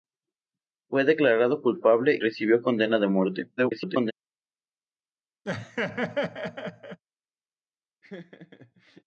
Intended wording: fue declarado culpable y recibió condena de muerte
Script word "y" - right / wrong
wrong